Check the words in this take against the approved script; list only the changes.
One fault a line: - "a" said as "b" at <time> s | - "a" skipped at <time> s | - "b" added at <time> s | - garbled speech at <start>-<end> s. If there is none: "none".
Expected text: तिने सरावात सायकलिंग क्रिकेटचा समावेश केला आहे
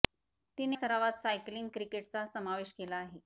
none